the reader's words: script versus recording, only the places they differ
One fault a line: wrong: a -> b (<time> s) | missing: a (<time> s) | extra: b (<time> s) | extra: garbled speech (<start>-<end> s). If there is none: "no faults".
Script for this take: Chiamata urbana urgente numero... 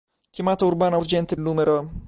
no faults